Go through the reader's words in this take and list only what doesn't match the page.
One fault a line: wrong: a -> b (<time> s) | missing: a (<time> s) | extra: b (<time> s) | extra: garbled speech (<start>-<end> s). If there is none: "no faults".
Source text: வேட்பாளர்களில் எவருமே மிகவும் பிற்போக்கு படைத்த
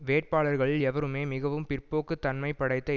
extra: தன்மை (2.2 s)